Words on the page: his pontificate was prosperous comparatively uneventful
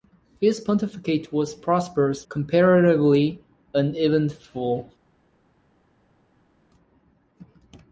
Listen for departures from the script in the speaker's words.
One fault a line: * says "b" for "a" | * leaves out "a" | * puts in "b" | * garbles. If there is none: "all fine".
all fine